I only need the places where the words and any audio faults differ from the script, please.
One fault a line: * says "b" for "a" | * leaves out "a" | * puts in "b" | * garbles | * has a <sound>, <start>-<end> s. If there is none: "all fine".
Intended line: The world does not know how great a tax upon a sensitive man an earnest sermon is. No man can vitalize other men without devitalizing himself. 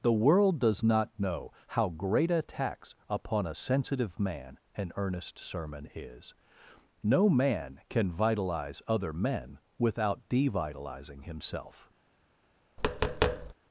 * has a tap, 12.8-13.5 s